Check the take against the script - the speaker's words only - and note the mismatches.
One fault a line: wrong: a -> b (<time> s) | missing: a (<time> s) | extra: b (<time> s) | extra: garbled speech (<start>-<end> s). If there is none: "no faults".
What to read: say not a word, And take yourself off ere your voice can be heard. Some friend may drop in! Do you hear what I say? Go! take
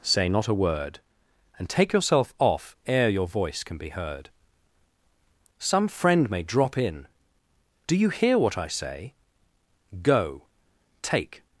no faults